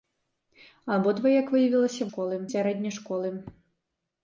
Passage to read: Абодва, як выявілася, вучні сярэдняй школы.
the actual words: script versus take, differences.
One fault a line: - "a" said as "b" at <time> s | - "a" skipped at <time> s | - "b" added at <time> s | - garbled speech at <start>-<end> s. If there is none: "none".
- "вучні" said as "школы" at 2.1 s